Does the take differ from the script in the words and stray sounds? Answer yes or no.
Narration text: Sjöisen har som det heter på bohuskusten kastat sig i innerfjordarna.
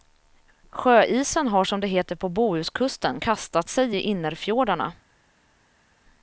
no